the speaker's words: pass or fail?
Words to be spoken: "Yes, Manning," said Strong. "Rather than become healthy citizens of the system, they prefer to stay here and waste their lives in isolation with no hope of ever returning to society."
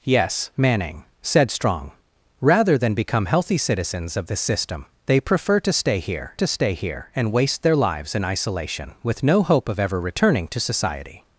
fail